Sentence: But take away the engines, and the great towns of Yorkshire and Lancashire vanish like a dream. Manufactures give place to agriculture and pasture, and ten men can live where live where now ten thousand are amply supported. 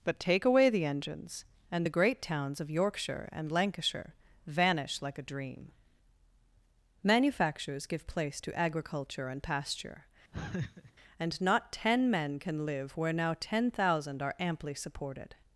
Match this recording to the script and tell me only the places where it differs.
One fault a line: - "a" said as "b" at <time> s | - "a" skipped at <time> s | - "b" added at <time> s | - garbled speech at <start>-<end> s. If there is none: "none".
- "not" added at 11.4 s
- "live where" skipped at 13.1 s